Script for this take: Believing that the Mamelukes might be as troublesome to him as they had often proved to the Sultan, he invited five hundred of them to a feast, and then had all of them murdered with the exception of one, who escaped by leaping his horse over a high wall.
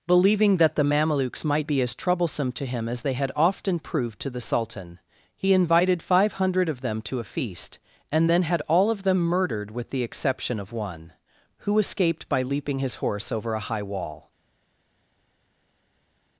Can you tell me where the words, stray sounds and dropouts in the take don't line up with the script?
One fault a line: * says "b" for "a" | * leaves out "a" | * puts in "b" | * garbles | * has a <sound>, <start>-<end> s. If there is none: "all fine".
all fine